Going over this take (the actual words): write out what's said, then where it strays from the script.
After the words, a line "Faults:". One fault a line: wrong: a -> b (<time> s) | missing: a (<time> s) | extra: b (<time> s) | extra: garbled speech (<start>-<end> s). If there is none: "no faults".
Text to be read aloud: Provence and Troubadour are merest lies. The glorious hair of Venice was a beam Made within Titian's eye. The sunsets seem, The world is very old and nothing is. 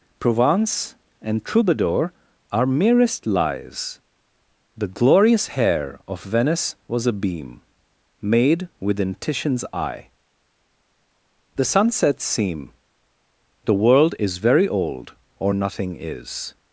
Provence and Troubadour are merest lies. The glorious hair of Venice was a beam Made within Titian's eye. The sunsets seem, The world is very old or nothing is.
Faults:
wrong: and -> or (15.4 s)